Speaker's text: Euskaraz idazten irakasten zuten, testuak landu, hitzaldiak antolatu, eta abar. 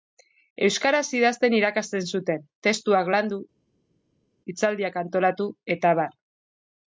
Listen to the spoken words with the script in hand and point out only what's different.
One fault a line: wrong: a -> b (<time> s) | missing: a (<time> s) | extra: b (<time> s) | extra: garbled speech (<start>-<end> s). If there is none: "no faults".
no faults